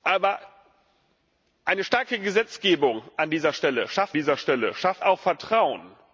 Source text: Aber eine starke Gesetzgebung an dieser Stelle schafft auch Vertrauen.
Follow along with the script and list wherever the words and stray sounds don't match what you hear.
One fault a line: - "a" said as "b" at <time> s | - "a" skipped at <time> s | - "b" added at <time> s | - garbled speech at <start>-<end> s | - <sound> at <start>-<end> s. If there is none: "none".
- "dieser Stelle schafft" added at 4.1 s